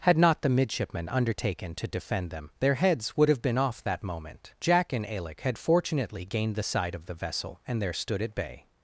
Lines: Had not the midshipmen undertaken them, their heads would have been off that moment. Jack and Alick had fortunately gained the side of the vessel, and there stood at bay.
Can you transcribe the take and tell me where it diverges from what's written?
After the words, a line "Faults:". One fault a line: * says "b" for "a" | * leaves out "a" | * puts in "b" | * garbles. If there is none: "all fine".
Had not the midshipmen undertaken to defend them, their heads would have been off that moment. Jack and Alick had fortunately gained the side of the vessel, and there stood at bay.
Faults:
* puts in "to defend"